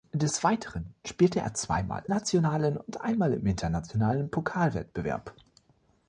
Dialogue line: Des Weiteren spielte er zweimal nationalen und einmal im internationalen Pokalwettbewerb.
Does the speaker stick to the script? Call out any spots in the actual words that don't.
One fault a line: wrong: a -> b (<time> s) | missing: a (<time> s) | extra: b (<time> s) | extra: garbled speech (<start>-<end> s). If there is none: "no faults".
no faults